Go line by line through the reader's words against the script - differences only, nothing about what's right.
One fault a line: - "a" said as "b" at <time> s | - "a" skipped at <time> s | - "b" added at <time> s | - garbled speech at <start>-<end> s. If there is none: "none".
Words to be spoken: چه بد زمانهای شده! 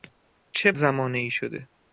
- "بد" skipped at 0.7 s